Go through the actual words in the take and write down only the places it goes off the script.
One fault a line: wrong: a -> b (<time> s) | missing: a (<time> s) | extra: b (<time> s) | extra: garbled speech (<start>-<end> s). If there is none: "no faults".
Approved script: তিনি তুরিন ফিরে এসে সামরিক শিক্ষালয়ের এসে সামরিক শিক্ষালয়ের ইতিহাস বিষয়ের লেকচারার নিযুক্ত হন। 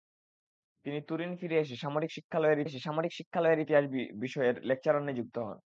no faults